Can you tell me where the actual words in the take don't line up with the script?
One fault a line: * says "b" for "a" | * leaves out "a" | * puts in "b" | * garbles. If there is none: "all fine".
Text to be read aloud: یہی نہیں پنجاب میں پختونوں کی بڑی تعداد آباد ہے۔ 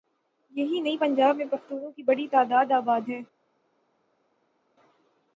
all fine